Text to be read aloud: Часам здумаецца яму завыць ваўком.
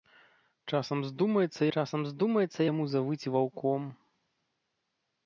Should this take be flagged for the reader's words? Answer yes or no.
yes